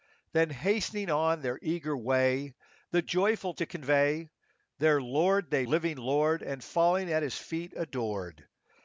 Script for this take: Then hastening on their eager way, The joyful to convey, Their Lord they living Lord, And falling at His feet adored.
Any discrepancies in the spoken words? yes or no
no